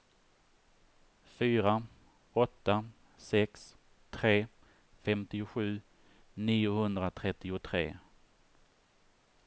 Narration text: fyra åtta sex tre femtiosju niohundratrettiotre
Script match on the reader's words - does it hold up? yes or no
yes